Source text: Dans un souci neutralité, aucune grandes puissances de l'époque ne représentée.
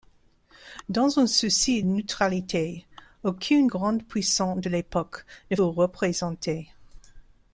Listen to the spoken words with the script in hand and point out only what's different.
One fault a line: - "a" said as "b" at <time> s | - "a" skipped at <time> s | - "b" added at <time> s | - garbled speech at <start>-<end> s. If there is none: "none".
none